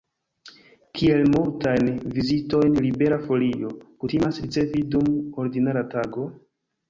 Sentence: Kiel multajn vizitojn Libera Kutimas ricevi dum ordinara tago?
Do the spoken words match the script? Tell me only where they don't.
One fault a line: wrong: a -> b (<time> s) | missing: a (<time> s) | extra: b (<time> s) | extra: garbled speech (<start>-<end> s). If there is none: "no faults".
extra: Folio (3.3 s)